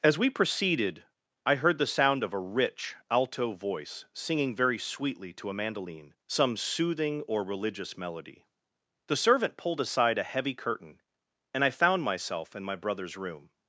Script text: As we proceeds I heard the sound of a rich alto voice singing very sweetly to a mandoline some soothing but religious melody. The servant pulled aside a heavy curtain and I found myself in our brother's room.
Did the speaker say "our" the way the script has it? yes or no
no